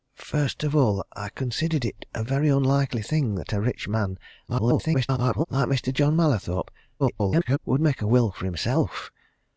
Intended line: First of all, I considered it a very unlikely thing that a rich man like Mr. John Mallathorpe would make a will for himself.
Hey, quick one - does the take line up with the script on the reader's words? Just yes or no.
no